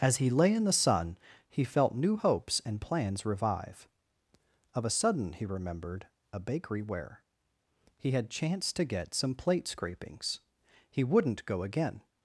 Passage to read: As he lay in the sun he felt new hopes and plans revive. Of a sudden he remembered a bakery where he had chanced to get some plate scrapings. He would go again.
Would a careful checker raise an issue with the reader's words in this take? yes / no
yes